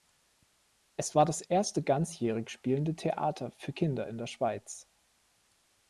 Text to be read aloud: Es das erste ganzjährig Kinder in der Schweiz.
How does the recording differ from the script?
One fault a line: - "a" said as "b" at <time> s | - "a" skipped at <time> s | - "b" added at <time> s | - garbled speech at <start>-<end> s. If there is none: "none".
- "war" added at 1.1 s
- "spielende Theater für" added at 2.5 s